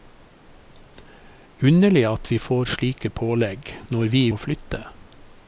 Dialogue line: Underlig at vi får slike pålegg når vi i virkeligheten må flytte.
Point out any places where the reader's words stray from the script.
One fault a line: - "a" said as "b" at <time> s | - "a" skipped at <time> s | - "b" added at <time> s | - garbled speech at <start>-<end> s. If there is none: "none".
- "virkeligheten" skipped at 4.3 s